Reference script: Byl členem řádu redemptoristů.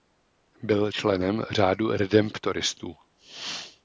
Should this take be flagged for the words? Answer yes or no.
no